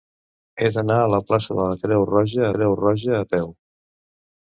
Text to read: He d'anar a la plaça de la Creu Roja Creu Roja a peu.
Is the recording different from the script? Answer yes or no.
no